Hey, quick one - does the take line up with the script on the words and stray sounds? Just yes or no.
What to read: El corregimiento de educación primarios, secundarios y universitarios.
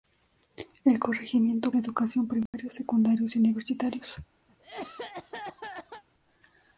no